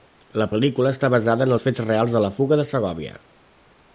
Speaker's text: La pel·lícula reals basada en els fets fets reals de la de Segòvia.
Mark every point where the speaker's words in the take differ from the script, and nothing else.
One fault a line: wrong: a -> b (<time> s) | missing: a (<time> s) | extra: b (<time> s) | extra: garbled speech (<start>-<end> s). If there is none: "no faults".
wrong: reals -> està (0.9 s)
missing: fets (1.8 s)
extra: fuga (2.4 s)